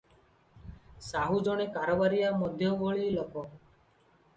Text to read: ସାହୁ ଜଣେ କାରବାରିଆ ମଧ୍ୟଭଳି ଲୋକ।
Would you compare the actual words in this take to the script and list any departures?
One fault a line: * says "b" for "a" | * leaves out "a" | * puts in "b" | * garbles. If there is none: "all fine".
all fine